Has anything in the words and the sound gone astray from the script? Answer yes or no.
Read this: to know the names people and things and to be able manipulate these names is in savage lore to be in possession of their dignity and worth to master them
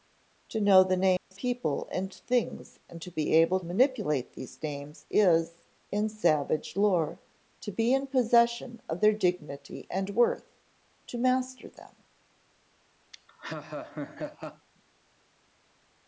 yes